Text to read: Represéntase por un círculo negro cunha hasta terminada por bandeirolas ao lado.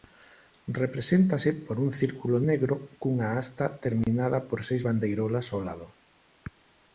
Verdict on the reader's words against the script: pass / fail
fail